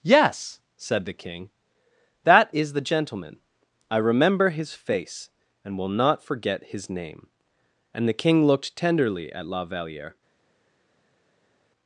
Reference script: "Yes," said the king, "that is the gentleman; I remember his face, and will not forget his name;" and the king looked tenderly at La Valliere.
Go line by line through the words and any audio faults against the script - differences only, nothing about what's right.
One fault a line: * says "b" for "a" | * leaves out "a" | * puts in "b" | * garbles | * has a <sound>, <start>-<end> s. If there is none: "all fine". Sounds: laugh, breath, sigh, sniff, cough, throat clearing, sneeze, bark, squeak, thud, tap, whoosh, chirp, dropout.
all fine